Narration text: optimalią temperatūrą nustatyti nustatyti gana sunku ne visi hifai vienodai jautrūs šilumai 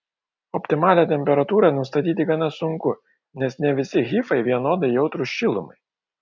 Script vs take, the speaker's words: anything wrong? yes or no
yes